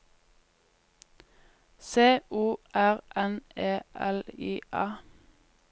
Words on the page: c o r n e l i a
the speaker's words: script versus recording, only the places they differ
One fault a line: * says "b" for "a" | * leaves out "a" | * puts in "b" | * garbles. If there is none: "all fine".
all fine